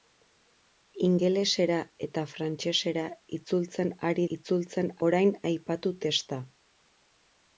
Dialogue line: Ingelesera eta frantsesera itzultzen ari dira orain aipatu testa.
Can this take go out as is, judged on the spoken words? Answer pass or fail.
fail